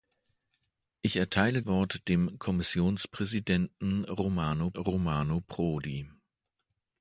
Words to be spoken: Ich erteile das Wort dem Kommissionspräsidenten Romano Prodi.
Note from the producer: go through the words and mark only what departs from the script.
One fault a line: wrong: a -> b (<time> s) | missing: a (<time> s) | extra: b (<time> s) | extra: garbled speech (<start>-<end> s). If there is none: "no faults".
missing: das (1.6 s)
extra: Romano (4.7 s)